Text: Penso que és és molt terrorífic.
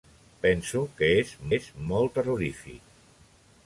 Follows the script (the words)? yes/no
yes